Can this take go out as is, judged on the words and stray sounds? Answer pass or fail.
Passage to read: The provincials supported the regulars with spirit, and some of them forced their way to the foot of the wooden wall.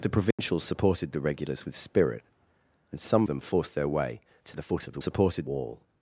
fail